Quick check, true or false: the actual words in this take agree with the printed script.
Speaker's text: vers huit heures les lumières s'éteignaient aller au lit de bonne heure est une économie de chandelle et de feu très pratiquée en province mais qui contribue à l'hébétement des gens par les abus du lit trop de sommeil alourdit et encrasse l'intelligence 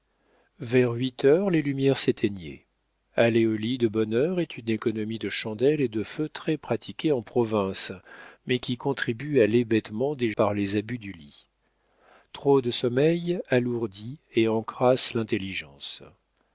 false